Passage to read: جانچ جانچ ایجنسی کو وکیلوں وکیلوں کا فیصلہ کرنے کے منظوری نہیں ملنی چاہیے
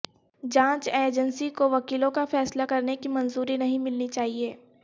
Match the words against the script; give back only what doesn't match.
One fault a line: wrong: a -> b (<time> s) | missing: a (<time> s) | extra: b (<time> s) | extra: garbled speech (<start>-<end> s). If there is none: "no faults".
missing: جانچ (0.9 s)
missing: وکیلوں (2.1 s)
wrong: کے -> کی (2.9 s)